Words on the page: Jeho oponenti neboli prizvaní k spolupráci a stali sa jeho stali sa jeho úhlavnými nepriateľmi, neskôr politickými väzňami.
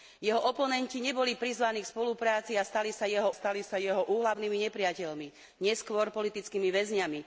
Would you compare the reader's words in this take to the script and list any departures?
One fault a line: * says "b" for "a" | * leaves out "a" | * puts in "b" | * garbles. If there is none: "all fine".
all fine